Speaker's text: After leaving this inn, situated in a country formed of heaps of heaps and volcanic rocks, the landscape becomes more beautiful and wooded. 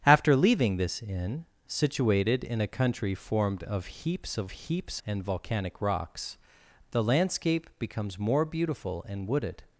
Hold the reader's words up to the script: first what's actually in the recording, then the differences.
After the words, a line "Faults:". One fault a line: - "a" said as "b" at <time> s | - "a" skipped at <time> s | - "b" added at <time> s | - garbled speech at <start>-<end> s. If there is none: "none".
After leaving this inn, situated in a country formed of heaps of heaps and volcanic rocks, the landscape becomes more beautiful and wooded.
Faults:
none